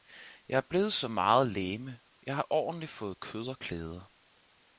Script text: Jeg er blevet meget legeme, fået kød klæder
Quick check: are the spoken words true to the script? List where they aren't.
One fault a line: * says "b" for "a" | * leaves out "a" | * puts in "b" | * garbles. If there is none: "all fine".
* puts in "så"
* puts in "jeg har ordentlig"
* puts in "og"